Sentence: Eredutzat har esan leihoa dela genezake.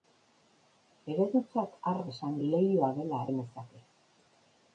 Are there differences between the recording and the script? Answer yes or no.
no